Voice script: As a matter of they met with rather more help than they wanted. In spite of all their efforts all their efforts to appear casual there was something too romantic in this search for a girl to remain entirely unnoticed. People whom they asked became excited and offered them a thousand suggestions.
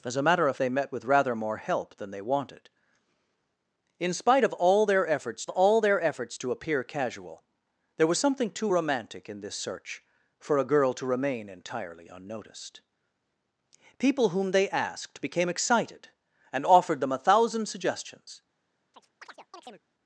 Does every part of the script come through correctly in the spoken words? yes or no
yes